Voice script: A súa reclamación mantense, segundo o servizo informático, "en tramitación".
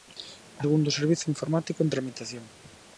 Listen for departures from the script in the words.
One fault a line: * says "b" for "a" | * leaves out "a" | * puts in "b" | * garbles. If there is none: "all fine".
* leaves out "súa reclamación mantense"